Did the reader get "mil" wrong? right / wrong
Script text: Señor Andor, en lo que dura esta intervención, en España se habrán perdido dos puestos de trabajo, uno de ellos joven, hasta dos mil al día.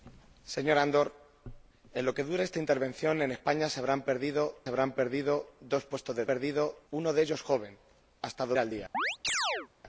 wrong